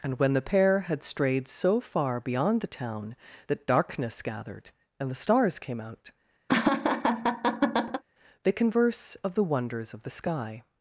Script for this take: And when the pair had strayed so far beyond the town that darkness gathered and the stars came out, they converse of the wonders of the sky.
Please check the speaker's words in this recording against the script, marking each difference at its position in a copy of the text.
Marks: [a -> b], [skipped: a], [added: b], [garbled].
And when the pair had strayed so far beyond the town that darkness gathered and the stars came out, they converse of the wonders of the sky.